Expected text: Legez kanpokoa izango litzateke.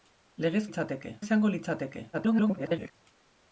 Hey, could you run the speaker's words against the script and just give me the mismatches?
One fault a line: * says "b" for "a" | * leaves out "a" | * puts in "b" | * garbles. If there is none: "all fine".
* says "litzateke" for "kanpokoa"
* garbles